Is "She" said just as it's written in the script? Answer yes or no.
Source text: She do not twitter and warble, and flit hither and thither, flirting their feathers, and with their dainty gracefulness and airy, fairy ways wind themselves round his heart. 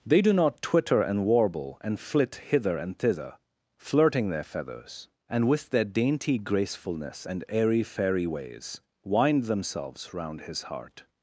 no